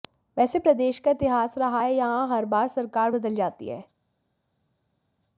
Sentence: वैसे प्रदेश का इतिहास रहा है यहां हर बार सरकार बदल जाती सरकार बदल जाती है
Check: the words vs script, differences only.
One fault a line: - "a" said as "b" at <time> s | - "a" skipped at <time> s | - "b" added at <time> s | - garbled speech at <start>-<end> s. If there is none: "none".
- "सरकार बदल जाती" skipped at 3.7 s